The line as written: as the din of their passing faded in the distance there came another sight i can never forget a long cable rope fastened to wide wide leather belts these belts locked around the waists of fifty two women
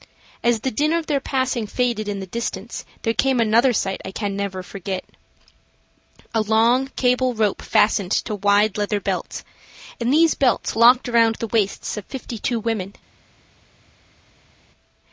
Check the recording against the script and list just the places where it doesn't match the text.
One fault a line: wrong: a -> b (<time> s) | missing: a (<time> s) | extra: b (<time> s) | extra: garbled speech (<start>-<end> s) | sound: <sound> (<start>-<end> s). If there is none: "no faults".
missing: wide (8.8 s)
extra: and (10.0 s)